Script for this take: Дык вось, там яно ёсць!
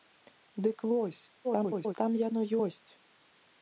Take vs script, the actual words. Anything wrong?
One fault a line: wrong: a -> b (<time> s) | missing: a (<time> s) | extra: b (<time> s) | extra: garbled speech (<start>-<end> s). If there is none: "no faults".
extra: garbled speech (1.4-1.9 s)